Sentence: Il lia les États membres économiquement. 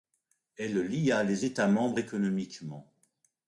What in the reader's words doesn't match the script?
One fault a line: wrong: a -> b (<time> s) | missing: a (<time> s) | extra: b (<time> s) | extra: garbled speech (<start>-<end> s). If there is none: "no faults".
wrong: Il -> Elle (0.6 s)